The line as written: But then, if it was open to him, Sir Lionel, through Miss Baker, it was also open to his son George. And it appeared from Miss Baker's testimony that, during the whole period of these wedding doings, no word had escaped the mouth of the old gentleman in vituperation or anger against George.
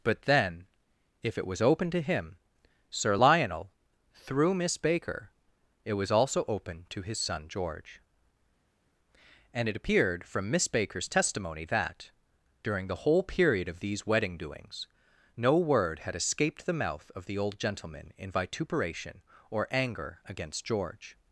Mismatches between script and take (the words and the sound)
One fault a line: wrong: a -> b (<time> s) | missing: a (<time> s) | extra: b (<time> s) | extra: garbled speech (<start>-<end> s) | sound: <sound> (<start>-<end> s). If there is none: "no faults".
no faults